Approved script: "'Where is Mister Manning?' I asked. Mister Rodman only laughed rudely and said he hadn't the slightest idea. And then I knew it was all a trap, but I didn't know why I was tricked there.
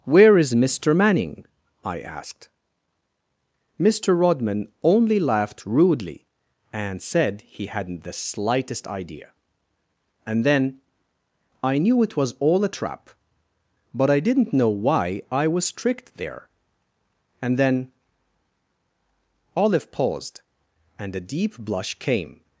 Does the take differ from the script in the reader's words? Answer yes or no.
yes